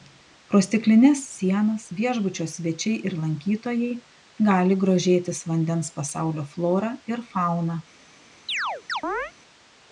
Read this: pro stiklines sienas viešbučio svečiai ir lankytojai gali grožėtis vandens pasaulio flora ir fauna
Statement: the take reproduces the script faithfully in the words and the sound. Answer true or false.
false